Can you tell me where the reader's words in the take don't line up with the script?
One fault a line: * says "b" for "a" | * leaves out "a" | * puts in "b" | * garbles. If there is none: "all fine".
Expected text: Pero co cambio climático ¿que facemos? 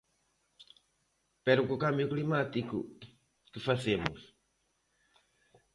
all fine